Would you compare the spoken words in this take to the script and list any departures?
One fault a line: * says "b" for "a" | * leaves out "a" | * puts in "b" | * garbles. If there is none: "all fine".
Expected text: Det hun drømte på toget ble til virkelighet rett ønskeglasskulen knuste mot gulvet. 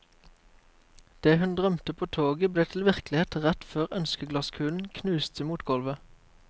* puts in "før"